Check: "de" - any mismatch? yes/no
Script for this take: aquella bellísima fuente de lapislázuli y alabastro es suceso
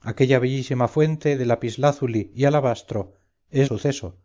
no